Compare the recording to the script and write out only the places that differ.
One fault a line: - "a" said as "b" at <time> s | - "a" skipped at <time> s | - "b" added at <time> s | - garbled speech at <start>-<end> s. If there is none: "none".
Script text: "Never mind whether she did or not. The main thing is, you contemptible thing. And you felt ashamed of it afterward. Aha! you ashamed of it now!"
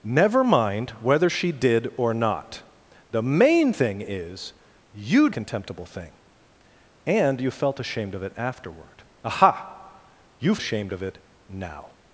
none